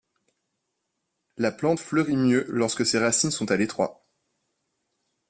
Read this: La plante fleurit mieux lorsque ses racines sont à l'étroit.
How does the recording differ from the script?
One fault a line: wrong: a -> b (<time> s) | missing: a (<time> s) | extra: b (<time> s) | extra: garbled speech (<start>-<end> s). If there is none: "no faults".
no faults